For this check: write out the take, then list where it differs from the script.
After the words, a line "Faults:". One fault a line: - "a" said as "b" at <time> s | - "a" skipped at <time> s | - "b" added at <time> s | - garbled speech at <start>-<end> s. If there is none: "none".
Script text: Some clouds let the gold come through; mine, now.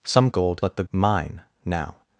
Some gold let the; mine, now.
Faults:
- "clouds" said as "gold" at 0.3 s
- "gold come through" skipped at 0.8 s